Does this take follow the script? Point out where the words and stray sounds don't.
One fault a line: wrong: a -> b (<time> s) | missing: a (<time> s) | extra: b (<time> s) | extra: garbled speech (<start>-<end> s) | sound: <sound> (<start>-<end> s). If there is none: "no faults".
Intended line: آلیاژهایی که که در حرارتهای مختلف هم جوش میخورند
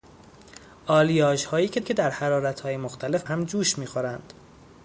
no faults